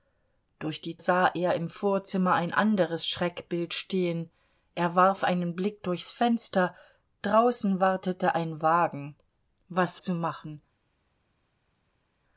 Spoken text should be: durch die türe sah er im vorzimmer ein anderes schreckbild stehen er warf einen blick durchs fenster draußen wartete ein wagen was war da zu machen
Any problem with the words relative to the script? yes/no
yes